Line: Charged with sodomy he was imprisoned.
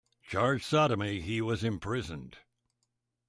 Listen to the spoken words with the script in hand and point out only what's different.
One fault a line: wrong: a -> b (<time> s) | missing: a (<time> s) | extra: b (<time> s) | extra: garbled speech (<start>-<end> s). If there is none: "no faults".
missing: with (0.7 s)